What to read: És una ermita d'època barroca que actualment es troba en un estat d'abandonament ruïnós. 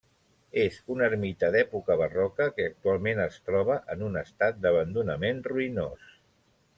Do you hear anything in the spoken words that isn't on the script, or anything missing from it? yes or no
no